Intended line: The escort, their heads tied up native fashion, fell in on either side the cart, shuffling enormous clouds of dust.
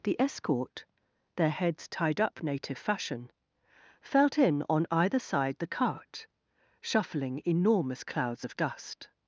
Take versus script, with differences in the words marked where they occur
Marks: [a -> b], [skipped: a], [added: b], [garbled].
The escort, their heads tied up native fashion, [fell -> felt] in on either side the cart, shuffling enormous clouds of dust.